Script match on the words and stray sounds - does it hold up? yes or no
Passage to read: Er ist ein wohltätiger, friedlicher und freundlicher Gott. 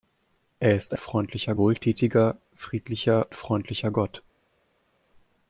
no